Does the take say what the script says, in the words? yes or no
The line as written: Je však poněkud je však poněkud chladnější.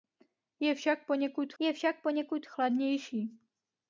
yes